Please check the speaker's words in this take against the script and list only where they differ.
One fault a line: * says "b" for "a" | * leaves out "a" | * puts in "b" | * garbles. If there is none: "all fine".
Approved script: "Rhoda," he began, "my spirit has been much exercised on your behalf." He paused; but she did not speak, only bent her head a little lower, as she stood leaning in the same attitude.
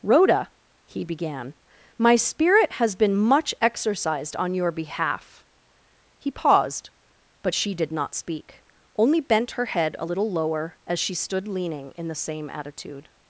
all fine